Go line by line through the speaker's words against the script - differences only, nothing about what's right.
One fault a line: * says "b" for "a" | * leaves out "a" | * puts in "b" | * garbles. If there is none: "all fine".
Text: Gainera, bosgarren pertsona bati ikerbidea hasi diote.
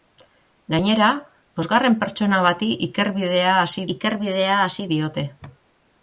* puts in "ikerbidea hasi"